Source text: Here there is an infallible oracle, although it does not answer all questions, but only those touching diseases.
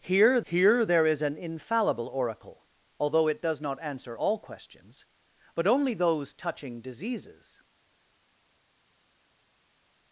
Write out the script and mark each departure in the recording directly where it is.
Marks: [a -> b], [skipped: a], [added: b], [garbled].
Here [added: here] there is an infallible oracle, although it does not answer all questions, but only those touching diseases.